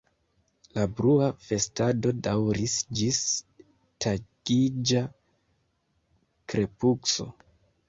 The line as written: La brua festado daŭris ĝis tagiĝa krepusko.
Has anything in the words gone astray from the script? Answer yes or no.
no